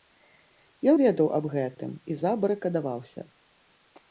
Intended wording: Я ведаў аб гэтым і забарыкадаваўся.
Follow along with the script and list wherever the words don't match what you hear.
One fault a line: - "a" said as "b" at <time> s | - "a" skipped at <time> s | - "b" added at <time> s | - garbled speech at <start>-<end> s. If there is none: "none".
none